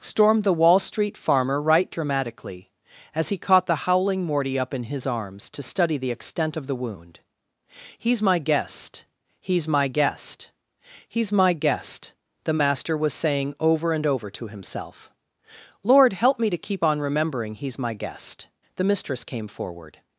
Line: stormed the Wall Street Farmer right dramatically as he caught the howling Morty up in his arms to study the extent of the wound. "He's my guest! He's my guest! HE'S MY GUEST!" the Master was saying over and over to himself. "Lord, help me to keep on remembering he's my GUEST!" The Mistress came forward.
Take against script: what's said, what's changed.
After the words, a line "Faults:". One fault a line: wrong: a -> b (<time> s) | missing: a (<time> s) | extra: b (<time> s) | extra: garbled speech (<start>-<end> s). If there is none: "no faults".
stormed the Wall Street Farmer right dramatically as he caught the howling Morty up in his arms to study the extent of the wound. "He's my guest! He's my guest! HE'S MY GUEST!" the Master was saying over and over to himself. "Lord, help me to keep on remembering he's my GUEST!" The Mistress came forward.
Faults:
no faults